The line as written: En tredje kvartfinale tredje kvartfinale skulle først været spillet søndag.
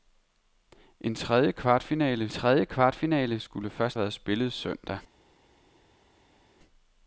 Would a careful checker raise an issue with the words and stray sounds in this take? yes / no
no